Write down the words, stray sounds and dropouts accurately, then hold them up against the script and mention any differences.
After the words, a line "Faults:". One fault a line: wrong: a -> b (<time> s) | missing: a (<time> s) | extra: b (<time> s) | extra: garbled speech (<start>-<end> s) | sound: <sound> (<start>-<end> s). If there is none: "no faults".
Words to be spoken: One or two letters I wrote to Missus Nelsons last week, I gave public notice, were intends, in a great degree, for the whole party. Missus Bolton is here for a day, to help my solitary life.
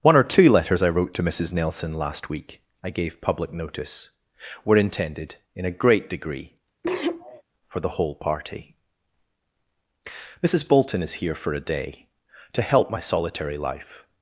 One or two letters I wrote to Missus Nelson last week, I gave public notice, were intended, in a great degree, for the whole party. Missus Bolton is here for a day, to help my solitary life.
Faults:
wrong: Nelsons -> Nelson (1.5 s)
wrong: intends -> intended (4.8 s)
sound: sneeze (6.8-7.4 s)